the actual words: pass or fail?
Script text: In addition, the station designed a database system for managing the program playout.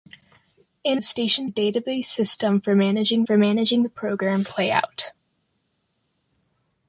fail